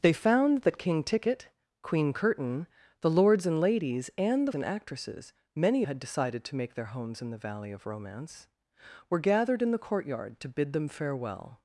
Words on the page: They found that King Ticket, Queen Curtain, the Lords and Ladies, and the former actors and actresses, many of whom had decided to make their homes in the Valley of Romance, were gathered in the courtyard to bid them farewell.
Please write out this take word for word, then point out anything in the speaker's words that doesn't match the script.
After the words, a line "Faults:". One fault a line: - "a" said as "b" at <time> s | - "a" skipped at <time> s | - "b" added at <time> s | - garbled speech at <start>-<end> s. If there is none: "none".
They found that King Ticket, Queen Curtain, the Lords and Ladies, and the and actresses, many had decided to make their homes in the Valley of Romance, were gathered in the courtyard to bid them farewell.
Faults:
- "former actors" skipped at 4.5 s
- "of whom" skipped at 5.8 s